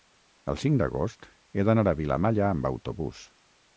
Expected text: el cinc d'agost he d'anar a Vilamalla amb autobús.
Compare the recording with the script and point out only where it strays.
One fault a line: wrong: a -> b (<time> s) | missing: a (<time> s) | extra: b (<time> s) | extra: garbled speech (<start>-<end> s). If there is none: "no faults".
no faults